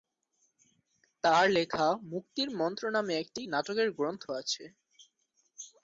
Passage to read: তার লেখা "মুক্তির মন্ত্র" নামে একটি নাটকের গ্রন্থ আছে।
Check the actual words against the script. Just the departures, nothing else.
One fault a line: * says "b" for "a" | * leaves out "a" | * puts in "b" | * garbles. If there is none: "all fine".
all fine